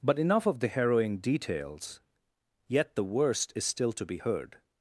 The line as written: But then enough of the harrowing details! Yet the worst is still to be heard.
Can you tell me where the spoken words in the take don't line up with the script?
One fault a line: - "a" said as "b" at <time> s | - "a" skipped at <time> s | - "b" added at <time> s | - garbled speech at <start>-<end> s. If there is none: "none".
- "then" skipped at 0.2 s